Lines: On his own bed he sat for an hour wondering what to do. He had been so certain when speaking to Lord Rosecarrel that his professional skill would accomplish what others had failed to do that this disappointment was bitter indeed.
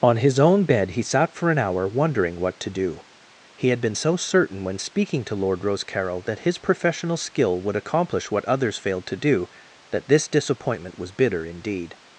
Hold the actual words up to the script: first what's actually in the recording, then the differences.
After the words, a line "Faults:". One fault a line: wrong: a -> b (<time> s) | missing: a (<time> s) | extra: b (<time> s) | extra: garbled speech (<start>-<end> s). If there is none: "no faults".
On his own bed he sat for an hour wondering what to do. He had been so certain when speaking to Lord Rosecarrel that his professional skill would accomplish what others failed to do that this disappointment was bitter indeed.
Faults:
missing: had (8.8 s)